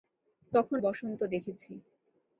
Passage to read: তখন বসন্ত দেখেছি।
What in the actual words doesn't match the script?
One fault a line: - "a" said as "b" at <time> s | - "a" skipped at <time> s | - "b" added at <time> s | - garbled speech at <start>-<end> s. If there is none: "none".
none